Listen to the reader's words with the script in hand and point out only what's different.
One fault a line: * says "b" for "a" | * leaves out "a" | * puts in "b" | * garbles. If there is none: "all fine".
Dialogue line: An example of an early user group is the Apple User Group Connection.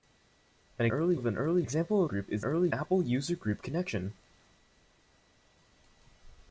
* says "early" for "example"
* says "example" for "user"
* says "early" for "the"